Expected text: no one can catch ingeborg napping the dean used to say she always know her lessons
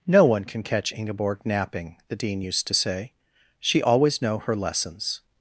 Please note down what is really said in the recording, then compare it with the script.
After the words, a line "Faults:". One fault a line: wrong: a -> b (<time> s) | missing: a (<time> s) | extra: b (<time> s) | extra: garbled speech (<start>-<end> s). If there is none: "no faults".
no one can catch ingeborg napping the dean used to say she always know her lessons
Faults:
no faults